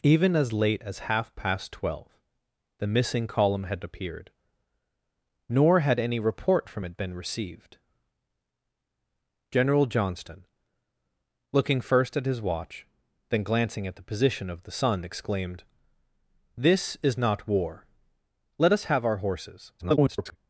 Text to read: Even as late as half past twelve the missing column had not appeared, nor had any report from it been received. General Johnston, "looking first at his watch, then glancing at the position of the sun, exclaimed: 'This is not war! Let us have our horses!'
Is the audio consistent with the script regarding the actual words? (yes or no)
no